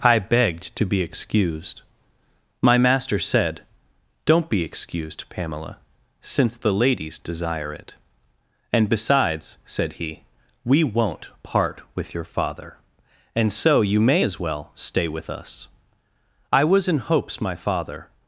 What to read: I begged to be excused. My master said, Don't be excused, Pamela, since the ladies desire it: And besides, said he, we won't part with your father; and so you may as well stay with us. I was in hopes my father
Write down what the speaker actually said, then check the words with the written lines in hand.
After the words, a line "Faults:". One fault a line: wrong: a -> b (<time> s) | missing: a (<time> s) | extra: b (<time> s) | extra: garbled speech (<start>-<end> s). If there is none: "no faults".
I begged to be excused. My master said, Don't be excused, Pamela, since the ladies desire it: And besides, said he, we won't part with your father; and so you may as well stay with us. I was in hopes my father
Faults:
no faults